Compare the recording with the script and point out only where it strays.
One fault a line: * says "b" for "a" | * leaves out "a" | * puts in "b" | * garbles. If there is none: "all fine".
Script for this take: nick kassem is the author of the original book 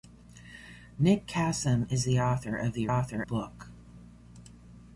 * says "author" for "original"